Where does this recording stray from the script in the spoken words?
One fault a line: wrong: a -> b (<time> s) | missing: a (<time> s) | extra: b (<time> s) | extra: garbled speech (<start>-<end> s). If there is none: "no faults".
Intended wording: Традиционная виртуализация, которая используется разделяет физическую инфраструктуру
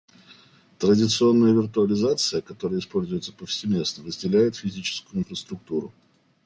extra: повсеместно (3.3 s)